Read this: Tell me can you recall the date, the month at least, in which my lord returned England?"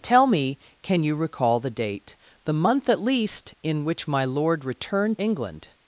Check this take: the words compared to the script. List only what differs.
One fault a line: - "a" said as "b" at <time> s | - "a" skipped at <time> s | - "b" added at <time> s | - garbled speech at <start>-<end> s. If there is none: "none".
none